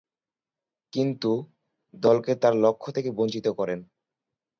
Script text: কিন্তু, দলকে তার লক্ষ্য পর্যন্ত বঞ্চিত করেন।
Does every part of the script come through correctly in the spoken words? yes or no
no